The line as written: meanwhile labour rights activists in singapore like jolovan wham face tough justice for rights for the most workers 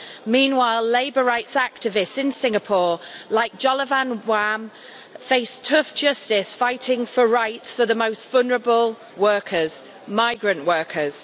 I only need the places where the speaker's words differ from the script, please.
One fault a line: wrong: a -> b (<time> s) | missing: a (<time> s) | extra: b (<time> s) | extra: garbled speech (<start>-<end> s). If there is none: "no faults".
extra: fighting (6.5 s)
extra: vulnerable workers migrant (8.3 s)